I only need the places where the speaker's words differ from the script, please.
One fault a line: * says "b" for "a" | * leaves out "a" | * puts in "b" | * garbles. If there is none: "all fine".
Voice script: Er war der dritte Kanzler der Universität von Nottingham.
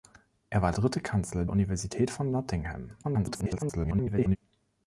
* leaves out "der"
* leaves out "der"
* garbles